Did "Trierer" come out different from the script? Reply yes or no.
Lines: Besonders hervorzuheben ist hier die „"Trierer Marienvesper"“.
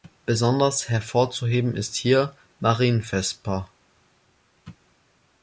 yes